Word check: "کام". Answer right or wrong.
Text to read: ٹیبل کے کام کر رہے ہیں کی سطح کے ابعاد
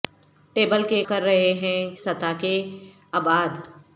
wrong